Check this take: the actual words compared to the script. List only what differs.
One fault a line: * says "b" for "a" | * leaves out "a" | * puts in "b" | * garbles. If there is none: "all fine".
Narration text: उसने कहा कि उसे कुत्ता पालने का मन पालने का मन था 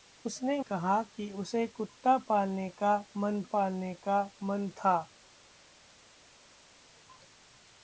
all fine